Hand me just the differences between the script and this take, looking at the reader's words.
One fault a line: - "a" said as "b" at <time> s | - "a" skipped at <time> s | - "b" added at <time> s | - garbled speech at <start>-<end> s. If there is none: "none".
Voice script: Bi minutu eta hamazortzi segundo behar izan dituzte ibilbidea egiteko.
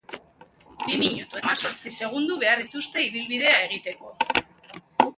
- "eta" skipped at 1.4 s
- "izan" skipped at 2.7 s